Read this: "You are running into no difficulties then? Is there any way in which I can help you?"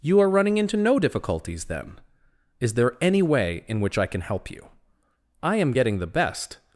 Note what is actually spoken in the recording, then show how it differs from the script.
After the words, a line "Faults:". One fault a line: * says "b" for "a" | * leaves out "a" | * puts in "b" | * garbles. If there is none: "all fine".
"You are running into no difficulties then? Is there any way in which I can help you?" "I am getting the best
Faults:
* puts in "I am getting the best"